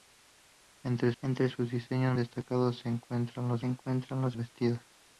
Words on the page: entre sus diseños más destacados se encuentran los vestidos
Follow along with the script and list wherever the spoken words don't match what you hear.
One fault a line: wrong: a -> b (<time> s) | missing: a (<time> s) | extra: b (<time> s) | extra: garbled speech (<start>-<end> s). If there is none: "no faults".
extra: entre (1.2 s)
missing: más (2.1 s)
extra: encuentran los (3.6 s)